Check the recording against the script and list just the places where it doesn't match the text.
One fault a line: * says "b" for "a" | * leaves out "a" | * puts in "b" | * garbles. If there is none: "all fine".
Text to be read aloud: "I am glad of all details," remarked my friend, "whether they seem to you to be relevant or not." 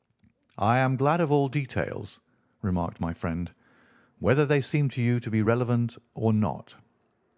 all fine